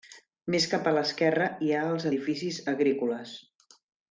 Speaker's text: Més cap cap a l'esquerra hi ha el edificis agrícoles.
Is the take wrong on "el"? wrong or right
wrong